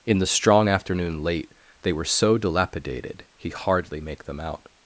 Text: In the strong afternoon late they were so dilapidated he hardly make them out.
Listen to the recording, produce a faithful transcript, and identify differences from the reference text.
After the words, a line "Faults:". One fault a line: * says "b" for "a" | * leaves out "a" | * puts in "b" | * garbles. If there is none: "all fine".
In the strong afternoon late they were so dilapidated he hardly make them out.
Faults:
all fine